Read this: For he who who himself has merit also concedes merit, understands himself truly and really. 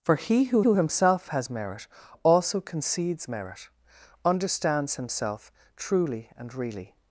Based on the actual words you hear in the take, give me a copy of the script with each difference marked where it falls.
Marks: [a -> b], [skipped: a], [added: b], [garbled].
For he who who himself has merit also concedes merit, understands himself truly and really.